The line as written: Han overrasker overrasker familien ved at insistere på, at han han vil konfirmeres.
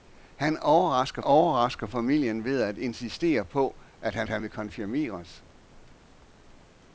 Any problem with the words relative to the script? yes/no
no